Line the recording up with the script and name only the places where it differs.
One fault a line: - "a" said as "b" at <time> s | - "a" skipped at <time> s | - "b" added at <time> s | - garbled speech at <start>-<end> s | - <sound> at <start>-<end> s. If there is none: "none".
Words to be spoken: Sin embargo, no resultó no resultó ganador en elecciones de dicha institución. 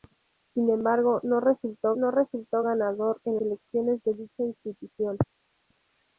none